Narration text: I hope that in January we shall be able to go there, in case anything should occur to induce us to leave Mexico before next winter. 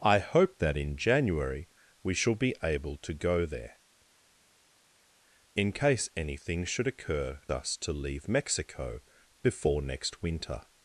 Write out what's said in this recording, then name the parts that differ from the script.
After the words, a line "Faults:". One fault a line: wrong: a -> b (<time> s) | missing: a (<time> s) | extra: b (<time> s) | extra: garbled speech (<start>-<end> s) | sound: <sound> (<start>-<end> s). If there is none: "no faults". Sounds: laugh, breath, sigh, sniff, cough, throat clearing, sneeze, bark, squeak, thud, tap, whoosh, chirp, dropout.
I hope that in January we shall be able to go there, in case anything should occur us to leave Mexico before next winter.
Faults:
missing: to induce (7.4 s)